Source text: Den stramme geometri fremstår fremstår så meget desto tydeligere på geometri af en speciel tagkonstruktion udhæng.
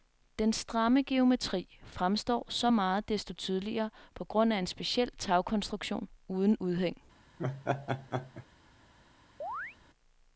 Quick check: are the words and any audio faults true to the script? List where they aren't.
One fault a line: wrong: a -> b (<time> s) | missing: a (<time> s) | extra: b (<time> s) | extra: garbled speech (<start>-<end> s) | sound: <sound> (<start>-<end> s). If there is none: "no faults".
missing: fremstår (2.5 s)
wrong: geometri -> grund (4.2 s)
extra: uden (6.3 s)
sound: laugh (7.4-8.5 s)
sound: chirp (9.4-9.8 s)